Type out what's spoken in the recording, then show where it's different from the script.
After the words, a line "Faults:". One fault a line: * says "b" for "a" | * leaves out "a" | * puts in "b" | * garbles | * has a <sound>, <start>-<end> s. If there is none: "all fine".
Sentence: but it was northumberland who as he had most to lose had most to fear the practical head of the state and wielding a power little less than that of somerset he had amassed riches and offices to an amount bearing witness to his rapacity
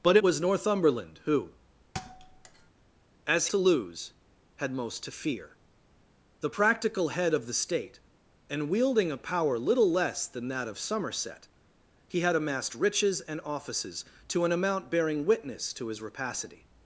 but was northumberland who as to lose had most to fear the practical head of the state and wielding a power little less than that of somerset he had amassed riches and offices to an amount bearing witness to his rapacity
Faults:
* leaves out "it"
* has a thud, 1.9-2.7 s
* leaves out "he had most"